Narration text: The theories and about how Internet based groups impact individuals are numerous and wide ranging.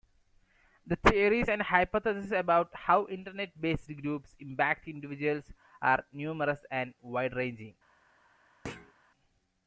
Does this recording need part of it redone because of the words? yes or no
yes